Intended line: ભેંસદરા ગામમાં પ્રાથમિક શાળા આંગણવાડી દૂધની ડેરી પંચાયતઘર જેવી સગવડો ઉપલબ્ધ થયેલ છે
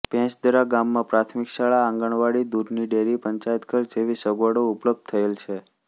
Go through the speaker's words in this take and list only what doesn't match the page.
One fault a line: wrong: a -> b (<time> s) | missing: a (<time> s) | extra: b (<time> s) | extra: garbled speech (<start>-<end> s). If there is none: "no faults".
no faults